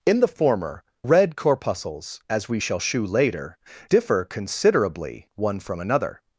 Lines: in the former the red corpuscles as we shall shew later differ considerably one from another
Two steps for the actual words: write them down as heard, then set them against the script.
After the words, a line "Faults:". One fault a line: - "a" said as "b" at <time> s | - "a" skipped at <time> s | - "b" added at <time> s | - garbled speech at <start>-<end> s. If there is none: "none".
in the former red corpuscles as we shall shew later differ considerably one from another
Faults:
- "the" skipped at 0.8 s